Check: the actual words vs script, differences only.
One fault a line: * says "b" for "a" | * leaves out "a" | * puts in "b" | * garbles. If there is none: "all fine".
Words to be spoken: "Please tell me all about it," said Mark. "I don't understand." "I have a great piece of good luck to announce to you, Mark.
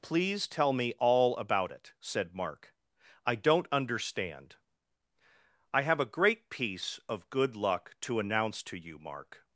all fine